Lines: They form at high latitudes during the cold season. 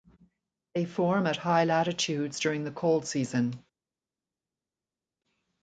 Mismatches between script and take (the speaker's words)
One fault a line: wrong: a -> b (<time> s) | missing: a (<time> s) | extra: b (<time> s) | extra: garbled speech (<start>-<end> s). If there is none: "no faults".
no faults